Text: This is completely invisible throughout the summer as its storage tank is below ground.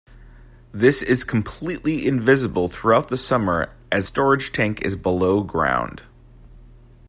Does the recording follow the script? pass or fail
fail